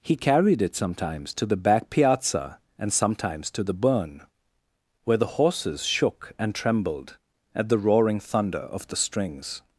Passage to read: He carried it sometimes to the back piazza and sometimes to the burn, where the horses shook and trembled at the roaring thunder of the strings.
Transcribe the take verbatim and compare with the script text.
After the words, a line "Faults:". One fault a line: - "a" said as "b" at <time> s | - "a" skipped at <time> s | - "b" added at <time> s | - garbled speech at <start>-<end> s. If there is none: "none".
He carried it sometimes to the back piazza and sometimes to the burn, where the horses shook and trembled at the roaring thunder of the strings.
Faults:
none